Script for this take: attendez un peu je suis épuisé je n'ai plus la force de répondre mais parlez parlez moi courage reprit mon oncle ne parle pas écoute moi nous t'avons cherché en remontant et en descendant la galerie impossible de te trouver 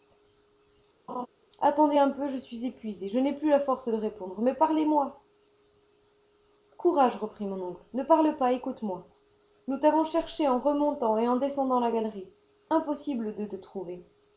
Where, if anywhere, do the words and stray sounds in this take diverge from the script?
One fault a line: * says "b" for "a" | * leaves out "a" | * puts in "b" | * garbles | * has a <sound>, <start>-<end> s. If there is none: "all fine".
* has a laugh, 1.1-1.3 s
* leaves out "parlez"